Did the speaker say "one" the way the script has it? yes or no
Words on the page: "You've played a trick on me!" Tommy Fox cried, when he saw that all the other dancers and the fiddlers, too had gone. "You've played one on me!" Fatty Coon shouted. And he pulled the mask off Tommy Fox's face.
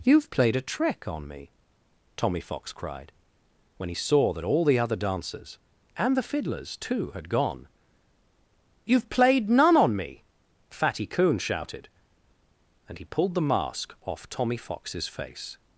no